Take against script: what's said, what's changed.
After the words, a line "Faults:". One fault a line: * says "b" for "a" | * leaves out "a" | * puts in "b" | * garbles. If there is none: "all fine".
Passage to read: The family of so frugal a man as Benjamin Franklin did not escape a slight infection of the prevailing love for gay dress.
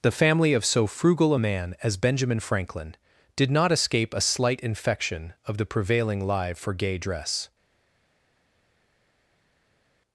The family of so frugal a man as Benjamin Franklin did not escape a slight infection of the prevailing live for gay dress.
Faults:
* says "live" for "love"